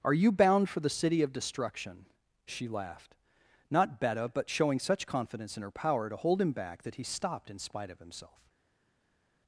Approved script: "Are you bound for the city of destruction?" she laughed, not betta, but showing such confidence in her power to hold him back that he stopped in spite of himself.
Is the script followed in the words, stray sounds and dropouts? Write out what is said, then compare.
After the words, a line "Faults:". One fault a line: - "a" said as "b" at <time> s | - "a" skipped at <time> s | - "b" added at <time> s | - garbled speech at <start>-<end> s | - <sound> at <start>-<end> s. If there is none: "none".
"Are you bound for the city of destruction?" she laughed, not betta, but showing such confidence in her power to hold him back that he stopped in spite of himself.
Faults:
none